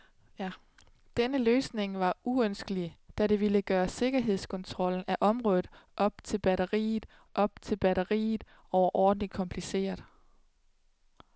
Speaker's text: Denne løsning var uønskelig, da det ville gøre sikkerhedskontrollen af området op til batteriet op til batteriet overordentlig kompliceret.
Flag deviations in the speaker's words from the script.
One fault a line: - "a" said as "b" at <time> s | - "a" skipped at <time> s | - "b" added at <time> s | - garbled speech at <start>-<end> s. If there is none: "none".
none